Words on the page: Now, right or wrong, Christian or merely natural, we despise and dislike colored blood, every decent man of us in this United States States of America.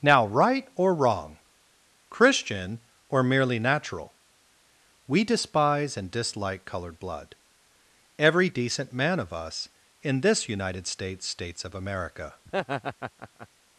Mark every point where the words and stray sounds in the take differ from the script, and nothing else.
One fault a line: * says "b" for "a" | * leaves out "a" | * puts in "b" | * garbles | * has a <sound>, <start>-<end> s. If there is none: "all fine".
* has a laugh, 12.5-13.5 s